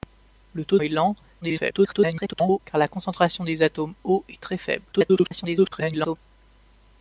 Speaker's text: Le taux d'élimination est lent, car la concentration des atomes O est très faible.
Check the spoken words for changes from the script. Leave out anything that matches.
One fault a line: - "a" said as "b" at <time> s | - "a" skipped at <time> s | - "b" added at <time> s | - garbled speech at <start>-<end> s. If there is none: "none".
- "d'élimination" skipped at 0.8 s
- garbled speech at 1.4-2.6 s
- garbled speech at 4.9-6.2 s